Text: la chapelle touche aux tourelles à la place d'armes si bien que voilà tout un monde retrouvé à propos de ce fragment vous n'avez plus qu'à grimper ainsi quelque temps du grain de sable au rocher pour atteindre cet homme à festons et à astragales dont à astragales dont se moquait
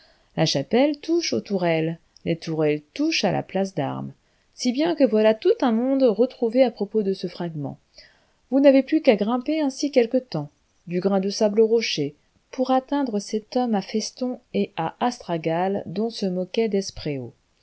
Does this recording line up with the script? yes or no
no